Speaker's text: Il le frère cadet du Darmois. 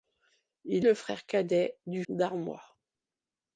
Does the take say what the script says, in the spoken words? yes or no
yes